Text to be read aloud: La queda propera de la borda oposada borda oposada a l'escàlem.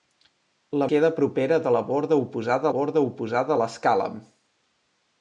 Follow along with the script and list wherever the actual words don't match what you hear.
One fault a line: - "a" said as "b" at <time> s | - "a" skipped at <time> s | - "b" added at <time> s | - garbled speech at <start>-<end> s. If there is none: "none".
none